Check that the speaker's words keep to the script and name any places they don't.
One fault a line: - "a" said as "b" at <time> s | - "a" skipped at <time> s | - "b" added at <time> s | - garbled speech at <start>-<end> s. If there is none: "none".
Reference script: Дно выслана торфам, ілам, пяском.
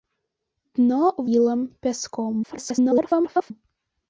- "выслана торфам" skipped at 1.0 s
- garbled speech at 2.4-3.5 s